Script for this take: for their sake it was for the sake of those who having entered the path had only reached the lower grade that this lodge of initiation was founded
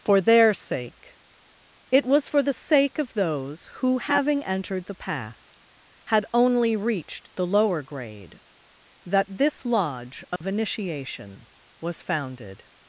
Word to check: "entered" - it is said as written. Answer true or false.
true